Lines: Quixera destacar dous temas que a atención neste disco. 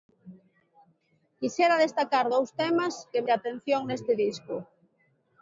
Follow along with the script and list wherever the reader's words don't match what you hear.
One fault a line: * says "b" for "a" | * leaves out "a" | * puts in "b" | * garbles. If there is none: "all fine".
all fine